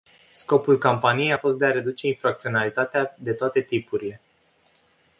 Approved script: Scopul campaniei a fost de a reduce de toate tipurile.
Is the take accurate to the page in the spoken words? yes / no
no